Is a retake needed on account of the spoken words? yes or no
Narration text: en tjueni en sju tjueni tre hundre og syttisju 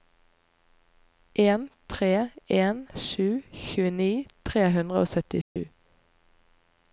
yes